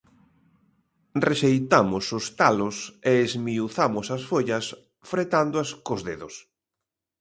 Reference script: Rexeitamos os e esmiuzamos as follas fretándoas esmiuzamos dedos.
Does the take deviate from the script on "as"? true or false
false